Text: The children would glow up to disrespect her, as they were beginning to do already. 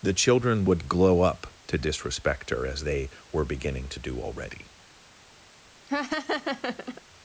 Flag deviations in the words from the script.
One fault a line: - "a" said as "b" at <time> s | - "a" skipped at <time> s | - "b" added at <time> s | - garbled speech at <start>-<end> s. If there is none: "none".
none